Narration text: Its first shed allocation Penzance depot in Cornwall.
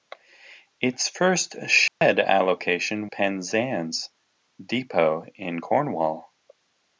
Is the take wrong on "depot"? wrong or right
right